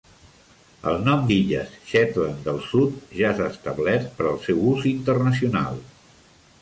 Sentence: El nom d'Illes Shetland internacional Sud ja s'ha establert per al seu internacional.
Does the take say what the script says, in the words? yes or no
no